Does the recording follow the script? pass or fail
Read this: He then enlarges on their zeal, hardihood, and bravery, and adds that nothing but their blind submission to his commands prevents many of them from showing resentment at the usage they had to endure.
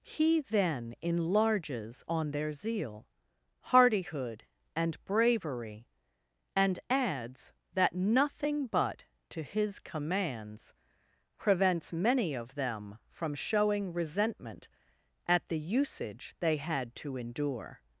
fail